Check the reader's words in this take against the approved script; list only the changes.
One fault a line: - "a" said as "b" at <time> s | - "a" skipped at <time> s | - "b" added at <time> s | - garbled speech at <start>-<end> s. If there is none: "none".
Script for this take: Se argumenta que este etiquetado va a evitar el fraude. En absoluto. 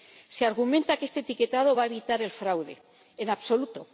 none